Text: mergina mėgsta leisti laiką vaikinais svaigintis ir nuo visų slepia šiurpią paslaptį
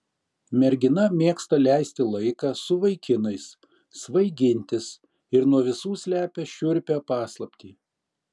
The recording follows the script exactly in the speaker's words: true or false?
false